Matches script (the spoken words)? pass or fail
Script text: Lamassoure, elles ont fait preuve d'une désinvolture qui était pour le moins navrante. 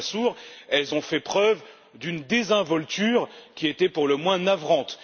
pass